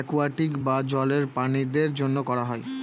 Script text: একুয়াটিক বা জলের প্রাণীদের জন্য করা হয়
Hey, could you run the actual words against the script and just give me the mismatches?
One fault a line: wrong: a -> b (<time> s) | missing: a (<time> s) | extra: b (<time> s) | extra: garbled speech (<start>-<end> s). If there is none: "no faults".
no faults